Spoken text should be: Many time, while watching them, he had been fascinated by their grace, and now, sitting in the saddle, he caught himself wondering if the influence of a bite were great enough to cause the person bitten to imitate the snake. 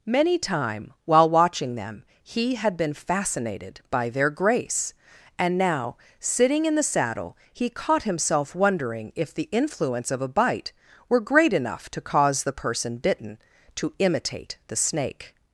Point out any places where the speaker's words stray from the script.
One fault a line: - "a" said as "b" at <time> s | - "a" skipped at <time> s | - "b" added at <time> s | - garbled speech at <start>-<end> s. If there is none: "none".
none